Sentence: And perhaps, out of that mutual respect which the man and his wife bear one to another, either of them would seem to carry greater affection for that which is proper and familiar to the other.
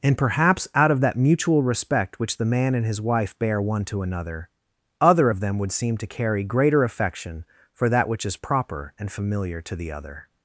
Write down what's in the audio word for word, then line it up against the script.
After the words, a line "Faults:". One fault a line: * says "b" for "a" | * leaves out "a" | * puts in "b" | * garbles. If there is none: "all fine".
And perhaps, out of that mutual respect which the man and his wife bear one to another, other of them would seem to carry greater affection for that which is proper and familiar to the other.
Faults:
* says "other" for "either"